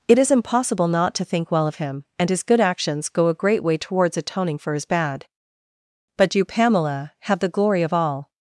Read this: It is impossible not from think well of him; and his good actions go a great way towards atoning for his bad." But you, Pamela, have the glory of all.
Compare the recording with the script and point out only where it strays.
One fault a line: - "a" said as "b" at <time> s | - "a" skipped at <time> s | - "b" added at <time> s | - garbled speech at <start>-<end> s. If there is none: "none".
- "from" said as "to" at 1.1 s